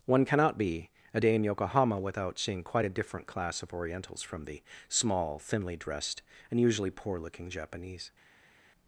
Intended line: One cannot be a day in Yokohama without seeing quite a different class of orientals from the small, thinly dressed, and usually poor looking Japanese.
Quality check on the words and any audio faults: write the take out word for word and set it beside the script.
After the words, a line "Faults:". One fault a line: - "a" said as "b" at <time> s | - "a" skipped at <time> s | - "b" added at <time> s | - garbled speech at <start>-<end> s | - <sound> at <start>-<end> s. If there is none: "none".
One cannot be a day in Yokohama without seeing quite a different class of orientals from the small, thinly dressed, and usually poor looking Japanese.
Faults:
none